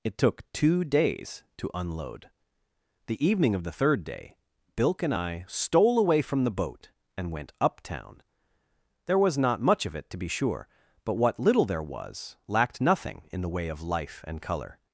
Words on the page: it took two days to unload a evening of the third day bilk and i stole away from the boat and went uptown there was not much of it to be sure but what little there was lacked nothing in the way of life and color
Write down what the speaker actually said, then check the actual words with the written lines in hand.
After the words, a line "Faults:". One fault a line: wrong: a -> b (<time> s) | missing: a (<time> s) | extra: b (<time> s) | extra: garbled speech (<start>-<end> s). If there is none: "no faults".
it took two days to unload the evening of the third day bilk and i stole away from the boat and went uptown there was not much of it to be sure but what little there was lacked nothing in the way of life and color
Faults:
wrong: a -> the (3.0 s)